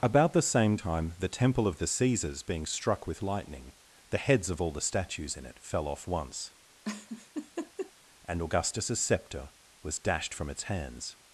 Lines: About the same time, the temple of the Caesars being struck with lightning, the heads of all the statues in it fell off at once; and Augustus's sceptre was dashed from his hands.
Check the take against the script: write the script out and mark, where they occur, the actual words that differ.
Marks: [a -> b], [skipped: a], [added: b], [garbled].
About the same time, the temple of the Caesars being struck with lightning, the heads of all the statues in it fell off [skipped: at] once; and Augustus's sceptre was dashed from [his -> its] hands.